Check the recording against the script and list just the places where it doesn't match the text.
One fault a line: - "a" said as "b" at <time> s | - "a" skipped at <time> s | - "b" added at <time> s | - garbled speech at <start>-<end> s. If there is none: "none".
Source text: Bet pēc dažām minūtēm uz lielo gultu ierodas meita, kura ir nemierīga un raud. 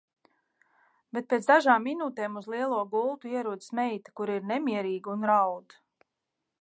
none